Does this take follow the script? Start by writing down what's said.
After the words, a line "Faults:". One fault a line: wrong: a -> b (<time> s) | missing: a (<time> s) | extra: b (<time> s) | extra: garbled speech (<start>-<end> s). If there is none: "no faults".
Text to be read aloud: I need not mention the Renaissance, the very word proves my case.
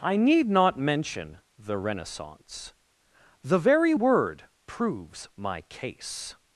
I need not mention the Renaissance, the very word proves my case.
Faults:
no faults